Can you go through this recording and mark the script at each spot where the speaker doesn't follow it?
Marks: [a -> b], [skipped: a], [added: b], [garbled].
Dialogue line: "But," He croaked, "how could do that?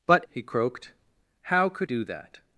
"But," He croaked, "how could do that?